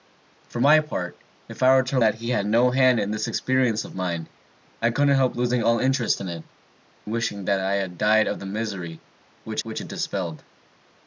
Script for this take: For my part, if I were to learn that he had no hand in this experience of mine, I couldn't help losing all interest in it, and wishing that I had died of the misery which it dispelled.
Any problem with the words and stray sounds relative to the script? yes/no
yes